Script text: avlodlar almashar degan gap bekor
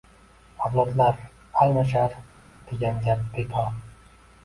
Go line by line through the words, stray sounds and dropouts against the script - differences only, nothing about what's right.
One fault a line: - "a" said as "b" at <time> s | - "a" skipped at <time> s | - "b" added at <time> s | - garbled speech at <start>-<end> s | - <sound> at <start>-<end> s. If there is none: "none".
none